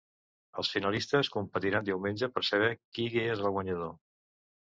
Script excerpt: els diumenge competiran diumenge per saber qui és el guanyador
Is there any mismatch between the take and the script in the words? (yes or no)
yes